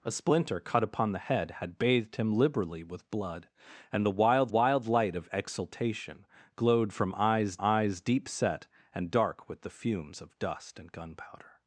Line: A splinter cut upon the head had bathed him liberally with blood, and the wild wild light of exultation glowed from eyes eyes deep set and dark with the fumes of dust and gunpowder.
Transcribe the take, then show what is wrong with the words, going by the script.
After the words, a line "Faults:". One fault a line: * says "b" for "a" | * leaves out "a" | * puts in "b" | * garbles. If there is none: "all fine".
A splinter cut upon the head had bathed him liberally with blood, and the wild wild light of exultation glowed from eyes eyes deep set and dark with the fumes of dust and gunpowder.
Faults:
all fine